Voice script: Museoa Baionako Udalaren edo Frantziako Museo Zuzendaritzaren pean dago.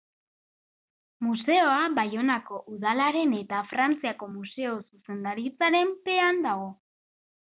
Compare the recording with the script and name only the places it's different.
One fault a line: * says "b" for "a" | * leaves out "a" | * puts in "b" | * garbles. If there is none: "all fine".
* says "eta" for "edo"